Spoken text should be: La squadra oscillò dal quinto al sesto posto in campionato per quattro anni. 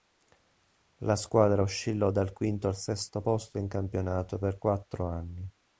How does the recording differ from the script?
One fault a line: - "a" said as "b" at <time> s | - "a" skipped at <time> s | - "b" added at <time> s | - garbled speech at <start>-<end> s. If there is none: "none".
none